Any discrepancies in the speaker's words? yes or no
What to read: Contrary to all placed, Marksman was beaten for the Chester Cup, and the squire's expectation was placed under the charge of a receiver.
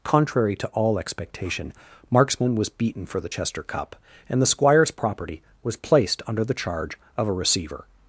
yes